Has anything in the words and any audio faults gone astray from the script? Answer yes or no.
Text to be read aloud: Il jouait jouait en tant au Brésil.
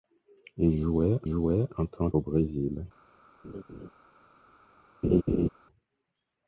yes